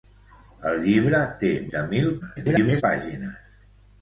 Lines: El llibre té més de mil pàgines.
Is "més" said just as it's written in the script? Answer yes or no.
no